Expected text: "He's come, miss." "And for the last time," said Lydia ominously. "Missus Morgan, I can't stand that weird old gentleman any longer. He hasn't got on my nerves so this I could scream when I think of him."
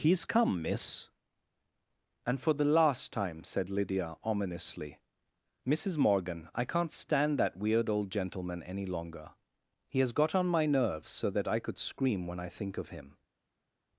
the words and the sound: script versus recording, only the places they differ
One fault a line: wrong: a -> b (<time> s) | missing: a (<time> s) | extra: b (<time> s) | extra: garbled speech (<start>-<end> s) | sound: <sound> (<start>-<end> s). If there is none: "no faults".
wrong: hasn't -> has (10.0 s)
wrong: this -> that (11.3 s)